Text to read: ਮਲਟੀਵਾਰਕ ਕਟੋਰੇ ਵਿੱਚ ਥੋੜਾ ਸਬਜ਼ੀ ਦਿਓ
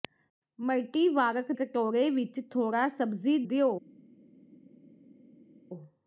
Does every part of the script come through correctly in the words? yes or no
yes